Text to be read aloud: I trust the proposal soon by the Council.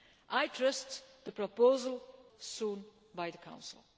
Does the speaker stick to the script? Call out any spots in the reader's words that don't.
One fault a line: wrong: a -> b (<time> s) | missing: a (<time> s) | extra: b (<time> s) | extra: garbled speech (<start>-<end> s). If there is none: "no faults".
no faults